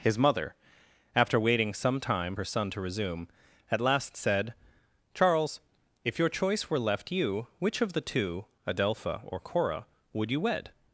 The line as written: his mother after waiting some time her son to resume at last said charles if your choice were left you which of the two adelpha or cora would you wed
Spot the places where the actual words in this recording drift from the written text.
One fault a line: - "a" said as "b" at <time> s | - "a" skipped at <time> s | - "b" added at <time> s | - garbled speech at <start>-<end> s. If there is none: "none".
none